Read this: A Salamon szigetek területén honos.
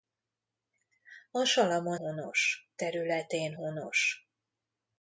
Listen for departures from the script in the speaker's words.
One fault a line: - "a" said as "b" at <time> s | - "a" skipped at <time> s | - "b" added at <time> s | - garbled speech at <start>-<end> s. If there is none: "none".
- "szigetek" said as "honos" at 1.9 s